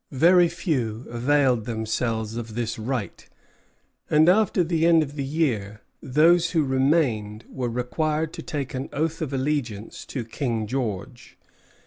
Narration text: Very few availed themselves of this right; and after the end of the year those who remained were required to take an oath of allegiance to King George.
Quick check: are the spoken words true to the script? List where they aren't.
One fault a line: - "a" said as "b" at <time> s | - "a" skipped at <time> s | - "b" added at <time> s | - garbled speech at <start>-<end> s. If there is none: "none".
none